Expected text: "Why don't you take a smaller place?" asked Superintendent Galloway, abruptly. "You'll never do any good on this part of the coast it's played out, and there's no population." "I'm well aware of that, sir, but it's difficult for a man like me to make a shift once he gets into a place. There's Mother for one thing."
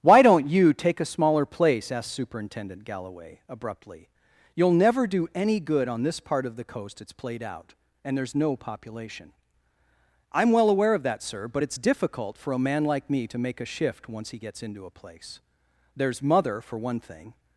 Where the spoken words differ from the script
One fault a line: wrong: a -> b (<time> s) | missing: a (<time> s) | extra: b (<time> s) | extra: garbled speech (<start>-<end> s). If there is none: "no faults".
no faults